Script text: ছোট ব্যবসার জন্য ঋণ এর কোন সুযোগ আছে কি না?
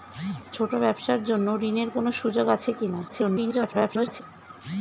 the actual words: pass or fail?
fail